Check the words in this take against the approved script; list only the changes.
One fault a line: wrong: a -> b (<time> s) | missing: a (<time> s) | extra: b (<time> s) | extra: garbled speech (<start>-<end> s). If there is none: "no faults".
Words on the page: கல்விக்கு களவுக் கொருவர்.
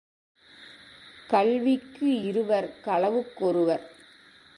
extra: இருவர் (2.2 s)